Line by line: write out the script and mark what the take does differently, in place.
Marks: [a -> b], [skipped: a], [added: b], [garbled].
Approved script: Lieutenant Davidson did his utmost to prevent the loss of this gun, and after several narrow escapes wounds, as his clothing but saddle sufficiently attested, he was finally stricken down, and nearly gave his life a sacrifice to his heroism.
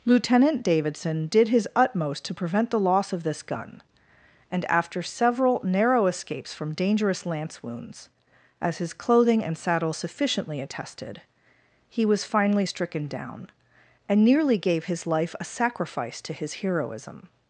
Lieutenant Davidson did his utmost to prevent the loss of this gun, and after several narrow escapes [added: from dangerous lance] wounds, as his clothing [but -> and] saddle sufficiently attested, he was finally stricken down, and nearly gave his life a sacrifice to his heroism.